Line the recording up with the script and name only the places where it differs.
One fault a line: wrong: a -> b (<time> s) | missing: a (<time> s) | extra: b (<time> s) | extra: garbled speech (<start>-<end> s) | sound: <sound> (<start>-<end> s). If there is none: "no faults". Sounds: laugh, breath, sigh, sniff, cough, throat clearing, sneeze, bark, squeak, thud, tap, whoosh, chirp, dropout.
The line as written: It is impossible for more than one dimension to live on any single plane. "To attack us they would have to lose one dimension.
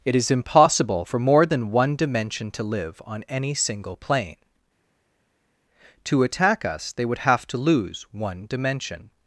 no faults